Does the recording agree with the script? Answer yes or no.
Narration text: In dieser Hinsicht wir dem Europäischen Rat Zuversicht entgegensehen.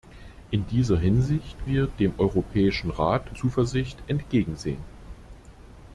yes